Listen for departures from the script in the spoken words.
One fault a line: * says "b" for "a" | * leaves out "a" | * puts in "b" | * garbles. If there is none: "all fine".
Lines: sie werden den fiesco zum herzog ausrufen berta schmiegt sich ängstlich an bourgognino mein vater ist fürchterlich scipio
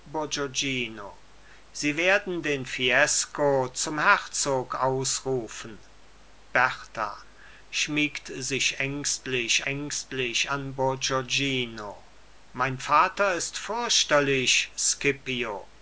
* puts in "ängstlich"